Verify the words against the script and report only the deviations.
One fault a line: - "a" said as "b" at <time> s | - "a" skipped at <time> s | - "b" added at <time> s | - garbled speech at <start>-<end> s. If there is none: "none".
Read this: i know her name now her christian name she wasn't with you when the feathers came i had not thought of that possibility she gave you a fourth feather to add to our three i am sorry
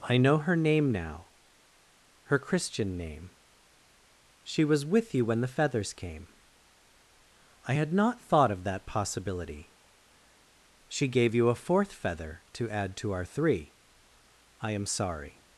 - "wasn't" said as "was" at 4.6 s